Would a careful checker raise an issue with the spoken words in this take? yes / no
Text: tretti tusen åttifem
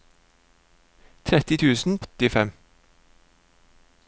no